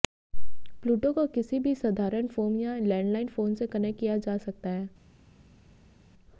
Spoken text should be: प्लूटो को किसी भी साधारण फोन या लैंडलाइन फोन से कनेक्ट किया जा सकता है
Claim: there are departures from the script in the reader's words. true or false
false